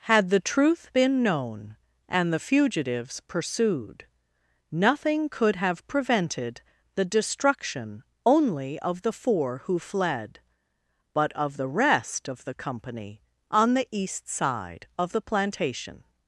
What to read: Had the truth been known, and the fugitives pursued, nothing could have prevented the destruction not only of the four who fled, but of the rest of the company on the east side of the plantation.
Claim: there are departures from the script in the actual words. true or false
true